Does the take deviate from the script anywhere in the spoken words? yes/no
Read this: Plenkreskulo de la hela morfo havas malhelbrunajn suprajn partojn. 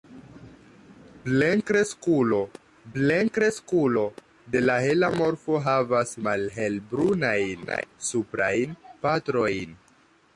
yes